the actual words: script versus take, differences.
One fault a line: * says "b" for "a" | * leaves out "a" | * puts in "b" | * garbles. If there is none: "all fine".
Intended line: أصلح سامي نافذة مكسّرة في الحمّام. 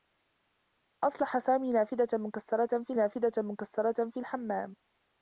* puts in "نافذة مكسّرة في"